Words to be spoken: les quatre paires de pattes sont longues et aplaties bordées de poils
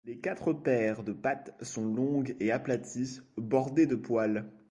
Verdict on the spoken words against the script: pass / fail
pass